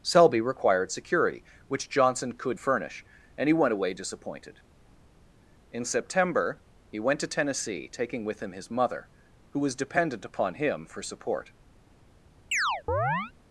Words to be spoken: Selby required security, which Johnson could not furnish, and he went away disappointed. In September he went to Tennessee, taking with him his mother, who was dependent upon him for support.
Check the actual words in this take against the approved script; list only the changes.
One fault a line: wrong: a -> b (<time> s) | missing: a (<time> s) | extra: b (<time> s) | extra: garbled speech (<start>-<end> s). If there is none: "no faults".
missing: not (2.6 s)